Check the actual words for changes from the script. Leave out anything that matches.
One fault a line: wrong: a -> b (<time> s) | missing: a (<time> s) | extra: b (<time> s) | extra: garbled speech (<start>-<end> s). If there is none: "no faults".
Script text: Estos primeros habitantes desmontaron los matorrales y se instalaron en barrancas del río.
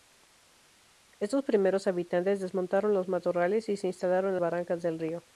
no faults